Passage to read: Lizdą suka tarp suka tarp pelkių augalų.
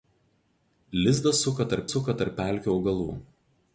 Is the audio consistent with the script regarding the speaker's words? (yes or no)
yes